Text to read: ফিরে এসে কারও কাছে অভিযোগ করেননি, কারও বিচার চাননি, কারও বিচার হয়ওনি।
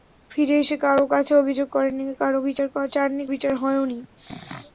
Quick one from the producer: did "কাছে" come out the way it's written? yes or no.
yes